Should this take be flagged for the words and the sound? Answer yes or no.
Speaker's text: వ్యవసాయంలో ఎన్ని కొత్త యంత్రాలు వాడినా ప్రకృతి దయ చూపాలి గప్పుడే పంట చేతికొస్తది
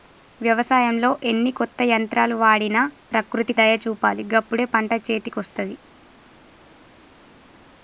no